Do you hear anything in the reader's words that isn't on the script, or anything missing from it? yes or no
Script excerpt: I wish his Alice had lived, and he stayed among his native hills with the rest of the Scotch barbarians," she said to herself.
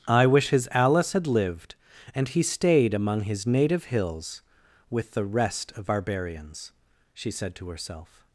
yes